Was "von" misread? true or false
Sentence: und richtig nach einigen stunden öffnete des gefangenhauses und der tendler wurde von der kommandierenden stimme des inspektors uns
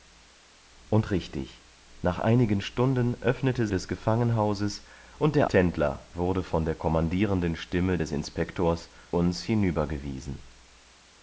false